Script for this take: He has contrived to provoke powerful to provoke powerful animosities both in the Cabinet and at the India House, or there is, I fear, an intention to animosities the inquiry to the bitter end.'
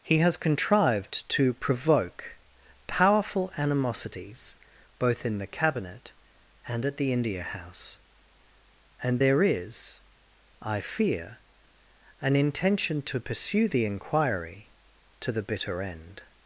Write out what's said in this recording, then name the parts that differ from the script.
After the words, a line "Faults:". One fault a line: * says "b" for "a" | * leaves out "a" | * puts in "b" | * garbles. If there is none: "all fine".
He has contrived to provoke powerful animosities both in the Cabinet and at the India House, and there is, I fear, an intention to pursue the inquiry to the bitter end.'
Faults:
* leaves out "to provoke powerful"
* says "and" for "or"
* says "pursue" for "animosities"